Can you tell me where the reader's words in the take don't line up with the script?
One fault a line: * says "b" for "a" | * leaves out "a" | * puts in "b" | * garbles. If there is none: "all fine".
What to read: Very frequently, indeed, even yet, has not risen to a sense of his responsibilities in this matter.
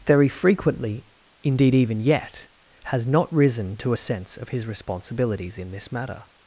all fine